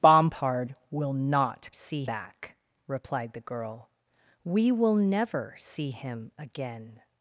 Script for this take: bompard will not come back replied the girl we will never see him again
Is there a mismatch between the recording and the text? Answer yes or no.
yes